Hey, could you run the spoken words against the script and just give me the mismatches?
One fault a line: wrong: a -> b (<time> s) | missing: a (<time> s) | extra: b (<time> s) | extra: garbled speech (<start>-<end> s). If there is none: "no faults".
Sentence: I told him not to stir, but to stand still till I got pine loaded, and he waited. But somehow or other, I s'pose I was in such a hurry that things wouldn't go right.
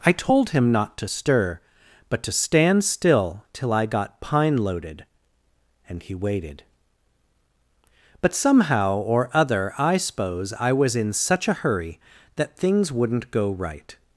no faults